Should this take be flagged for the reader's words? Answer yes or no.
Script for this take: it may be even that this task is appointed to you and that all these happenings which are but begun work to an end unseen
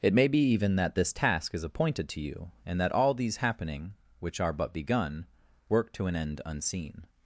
yes